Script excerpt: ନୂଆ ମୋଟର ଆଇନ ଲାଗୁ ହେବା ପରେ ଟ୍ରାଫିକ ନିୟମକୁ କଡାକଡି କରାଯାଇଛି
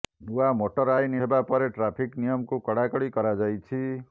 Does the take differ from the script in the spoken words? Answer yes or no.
yes